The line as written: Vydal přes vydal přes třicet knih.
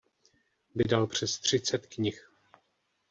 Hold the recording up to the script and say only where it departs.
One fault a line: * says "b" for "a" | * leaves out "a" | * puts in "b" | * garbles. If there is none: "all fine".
* leaves out "vydal přes"